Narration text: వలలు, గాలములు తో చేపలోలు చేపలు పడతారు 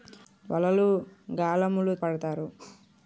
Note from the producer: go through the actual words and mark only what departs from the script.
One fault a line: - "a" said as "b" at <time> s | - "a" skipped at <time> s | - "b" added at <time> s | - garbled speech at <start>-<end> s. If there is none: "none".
- "తో చేపలోలు చేపలు" skipped at 1.9 s